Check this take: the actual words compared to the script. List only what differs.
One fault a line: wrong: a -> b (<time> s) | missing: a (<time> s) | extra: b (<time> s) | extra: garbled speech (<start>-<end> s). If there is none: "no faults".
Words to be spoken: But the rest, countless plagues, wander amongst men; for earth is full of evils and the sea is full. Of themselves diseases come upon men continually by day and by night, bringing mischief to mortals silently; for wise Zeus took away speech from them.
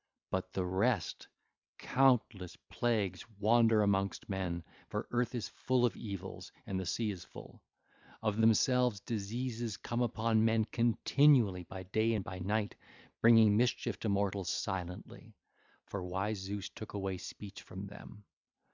no faults